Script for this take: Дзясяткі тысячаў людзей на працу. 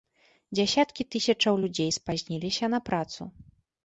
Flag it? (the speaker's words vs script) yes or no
yes